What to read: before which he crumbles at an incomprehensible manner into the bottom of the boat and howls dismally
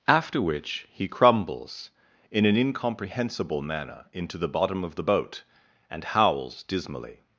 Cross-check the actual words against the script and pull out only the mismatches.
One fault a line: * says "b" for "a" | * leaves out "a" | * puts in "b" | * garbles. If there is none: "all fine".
* says "after" for "before"
* says "in" for "at"